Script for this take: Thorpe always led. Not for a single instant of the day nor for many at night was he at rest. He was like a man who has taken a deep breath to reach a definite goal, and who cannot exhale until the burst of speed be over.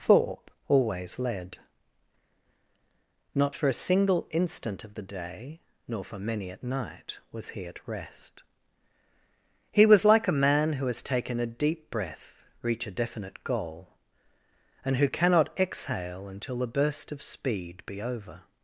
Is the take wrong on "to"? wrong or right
wrong